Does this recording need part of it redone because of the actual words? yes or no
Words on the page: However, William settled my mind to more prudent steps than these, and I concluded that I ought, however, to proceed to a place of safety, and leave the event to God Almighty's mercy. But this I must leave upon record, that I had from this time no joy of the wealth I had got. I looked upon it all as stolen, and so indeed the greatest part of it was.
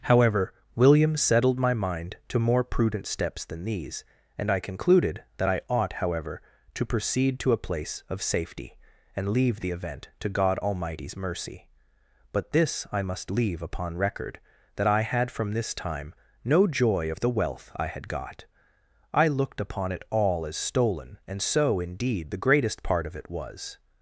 no